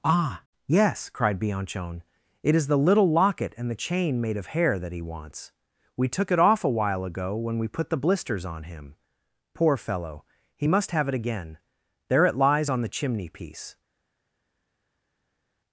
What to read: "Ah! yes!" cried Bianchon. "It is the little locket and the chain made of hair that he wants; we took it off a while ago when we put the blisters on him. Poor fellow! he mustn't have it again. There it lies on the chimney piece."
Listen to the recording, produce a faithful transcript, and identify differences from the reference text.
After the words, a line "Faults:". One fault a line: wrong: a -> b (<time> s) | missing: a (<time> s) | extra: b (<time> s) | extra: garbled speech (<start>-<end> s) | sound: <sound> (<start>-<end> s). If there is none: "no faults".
"Ah! yes!" cried Bianchon. "It is the little locket and the chain made of hair that he wants; we took it off a while ago when we put the blisters on him. Poor fellow! he must have it again. There it lies on the chimney piece."
Faults:
wrong: mustn't -> must (10.7 s)